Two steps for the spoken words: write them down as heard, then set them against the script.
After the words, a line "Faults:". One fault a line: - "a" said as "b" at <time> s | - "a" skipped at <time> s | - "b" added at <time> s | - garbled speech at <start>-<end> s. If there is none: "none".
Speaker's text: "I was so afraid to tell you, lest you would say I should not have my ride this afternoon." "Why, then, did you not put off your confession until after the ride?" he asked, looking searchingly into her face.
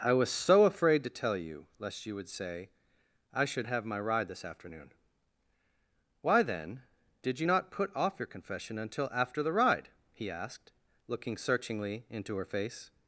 "I was so afraid to tell you, lest you would say I should have my ride this afternoon." "Why, then, did you not put off your confession until after the ride?" he asked, looking searchingly into her face.
Faults:
- "not" skipped at 3.7 s